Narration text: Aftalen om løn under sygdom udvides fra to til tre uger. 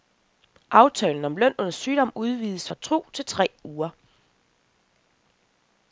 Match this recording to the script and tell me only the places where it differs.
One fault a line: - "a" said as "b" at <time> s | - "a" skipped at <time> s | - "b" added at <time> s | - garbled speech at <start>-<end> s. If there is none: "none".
none